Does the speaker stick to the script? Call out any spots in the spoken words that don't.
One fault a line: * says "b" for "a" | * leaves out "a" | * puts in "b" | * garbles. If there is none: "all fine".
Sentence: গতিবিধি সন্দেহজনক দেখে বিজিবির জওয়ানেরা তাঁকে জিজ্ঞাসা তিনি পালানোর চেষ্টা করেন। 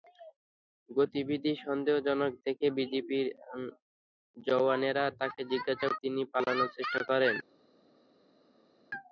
all fine